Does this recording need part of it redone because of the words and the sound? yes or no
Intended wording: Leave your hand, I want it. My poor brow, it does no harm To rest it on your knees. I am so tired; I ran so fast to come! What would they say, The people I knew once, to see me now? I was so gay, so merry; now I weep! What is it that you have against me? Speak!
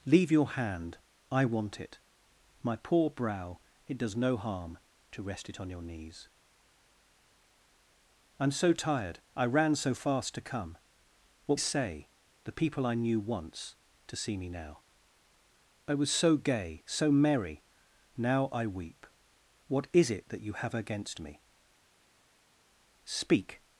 yes